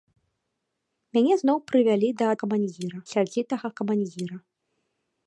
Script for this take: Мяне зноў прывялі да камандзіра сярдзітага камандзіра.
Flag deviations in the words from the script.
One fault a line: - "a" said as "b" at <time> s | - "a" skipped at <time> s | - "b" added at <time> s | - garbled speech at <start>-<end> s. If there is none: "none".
none